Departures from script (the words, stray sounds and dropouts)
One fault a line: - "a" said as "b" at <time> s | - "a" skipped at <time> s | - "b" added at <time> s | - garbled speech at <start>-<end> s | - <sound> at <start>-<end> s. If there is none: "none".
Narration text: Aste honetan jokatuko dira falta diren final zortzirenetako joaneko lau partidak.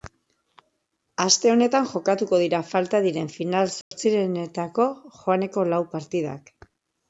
- dropout at 3.8-3.9 s